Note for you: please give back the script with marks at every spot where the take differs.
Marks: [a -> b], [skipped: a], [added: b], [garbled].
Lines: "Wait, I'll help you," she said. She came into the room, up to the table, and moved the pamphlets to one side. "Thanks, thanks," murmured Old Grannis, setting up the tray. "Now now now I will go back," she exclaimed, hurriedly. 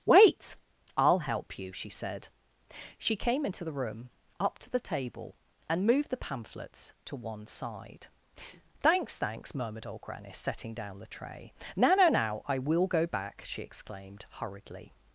"Wait, I'll help you," she said. She came into the room, up to the table, and moved the pamphlets to one side. "Thanks, thanks," murmured Old Grannis, setting [up -> down] the tray. "Now now now I will go back," she exclaimed, hurriedly.